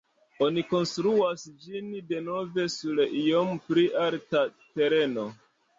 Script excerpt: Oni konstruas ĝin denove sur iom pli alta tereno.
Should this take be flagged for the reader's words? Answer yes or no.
no